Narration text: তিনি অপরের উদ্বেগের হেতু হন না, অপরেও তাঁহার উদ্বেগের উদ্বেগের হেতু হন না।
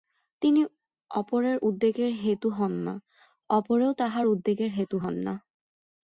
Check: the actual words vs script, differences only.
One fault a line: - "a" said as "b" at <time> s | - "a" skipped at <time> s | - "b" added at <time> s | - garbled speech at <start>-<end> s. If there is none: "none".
- "উদ্বেগের" skipped at 4.7 s